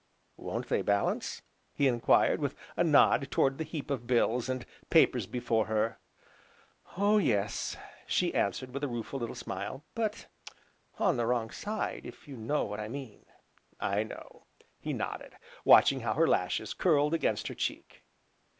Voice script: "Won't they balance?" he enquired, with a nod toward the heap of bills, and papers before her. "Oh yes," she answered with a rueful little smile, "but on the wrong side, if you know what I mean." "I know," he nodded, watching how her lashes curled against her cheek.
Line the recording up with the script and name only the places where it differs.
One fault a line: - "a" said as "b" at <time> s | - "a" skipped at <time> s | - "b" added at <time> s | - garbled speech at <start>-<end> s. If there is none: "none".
none